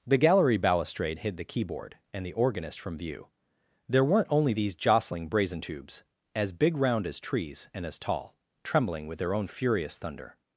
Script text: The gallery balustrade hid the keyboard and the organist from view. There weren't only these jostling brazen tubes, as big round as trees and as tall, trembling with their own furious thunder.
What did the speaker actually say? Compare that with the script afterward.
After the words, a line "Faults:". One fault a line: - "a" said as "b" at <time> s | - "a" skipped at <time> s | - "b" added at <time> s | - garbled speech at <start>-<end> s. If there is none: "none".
The gallery balustrade hid the keyboard and the organist from view. There weren't only these jostling brazen tubes, as big round as trees and as tall, trembling with their own furious thunder.
Faults:
none